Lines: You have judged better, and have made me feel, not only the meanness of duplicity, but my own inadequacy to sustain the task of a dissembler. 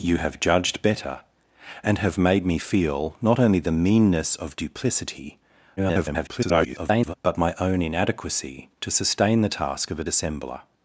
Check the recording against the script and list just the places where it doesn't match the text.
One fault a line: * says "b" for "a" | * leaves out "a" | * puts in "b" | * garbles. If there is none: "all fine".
* garbles